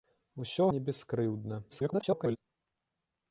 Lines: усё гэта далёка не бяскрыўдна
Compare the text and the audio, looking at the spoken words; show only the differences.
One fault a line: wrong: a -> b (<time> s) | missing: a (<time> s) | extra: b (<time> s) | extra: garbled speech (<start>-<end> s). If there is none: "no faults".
missing: гэта далёка (0.7 s)
extra: garbled speech (1.7-2.4 s)